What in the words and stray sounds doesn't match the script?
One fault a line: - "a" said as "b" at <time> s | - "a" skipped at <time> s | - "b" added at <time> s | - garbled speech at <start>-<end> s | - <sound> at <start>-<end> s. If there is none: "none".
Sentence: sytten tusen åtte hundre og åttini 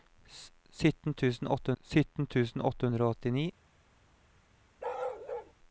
- "sytten tusen åtte" added at 1.8 s
- bark at 4.8-5.5 s